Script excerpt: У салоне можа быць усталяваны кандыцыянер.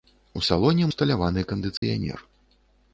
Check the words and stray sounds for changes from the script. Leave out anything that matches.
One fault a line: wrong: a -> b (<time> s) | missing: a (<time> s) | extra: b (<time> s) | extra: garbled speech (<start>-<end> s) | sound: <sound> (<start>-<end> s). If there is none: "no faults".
missing: можа быць (0.9 s)
sound: dropout (1.8-1.8 s)